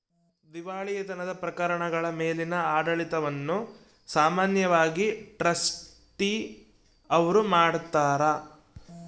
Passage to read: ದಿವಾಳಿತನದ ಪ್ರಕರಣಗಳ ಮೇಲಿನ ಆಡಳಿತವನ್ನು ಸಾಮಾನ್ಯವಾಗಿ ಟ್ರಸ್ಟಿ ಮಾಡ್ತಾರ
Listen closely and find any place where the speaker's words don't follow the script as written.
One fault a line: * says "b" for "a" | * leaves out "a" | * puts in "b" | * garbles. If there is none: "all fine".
* puts in "ಅವ್ರು"